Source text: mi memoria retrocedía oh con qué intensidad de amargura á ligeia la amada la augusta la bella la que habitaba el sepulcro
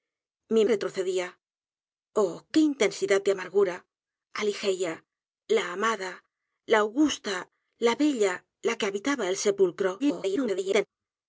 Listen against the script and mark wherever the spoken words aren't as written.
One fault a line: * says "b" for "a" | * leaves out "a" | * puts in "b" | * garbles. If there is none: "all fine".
* leaves out "memoria"
* leaves out "con"
* garbles